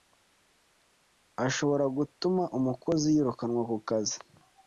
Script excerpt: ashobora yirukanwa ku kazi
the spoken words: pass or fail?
fail